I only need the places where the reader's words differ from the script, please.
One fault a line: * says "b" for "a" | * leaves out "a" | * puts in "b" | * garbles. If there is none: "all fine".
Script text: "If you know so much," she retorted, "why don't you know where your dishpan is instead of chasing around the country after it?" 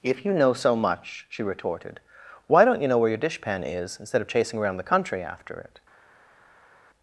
all fine